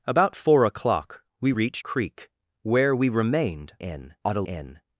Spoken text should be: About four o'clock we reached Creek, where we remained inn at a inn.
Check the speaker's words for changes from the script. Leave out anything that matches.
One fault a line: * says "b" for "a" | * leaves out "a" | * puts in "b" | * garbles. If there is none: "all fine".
all fine